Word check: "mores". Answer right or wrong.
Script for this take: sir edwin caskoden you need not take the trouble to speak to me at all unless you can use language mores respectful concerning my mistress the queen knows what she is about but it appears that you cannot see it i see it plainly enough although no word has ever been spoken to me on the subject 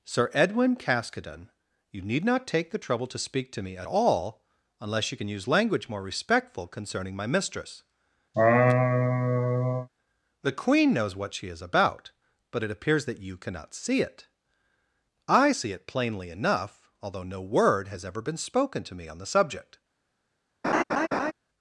wrong